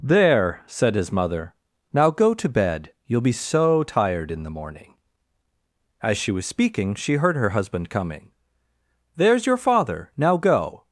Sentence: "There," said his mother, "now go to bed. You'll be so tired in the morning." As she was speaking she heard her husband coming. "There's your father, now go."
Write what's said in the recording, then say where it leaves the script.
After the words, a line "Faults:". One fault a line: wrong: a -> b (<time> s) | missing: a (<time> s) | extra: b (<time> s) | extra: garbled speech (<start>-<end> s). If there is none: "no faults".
"There," said his mother, "now go to bed. You'll be so tired in the morning." As she was speaking she heard her husband coming. "There's your father, now go."
Faults:
no faults